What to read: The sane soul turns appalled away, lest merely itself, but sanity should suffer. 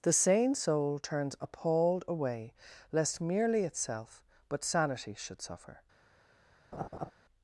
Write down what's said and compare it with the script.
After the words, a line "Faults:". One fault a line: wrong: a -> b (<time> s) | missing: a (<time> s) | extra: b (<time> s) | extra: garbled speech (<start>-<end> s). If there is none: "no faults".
The sane soul turns appalled away, lest merely itself, but sanity should suffer.
Faults:
no faults